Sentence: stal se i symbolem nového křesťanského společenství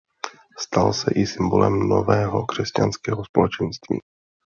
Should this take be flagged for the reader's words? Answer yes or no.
no